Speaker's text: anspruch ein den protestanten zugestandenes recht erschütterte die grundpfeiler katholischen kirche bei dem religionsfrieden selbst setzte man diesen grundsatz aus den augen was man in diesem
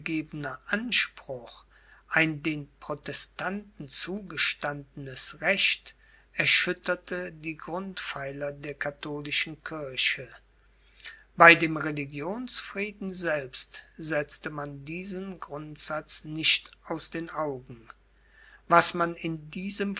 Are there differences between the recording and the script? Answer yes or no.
yes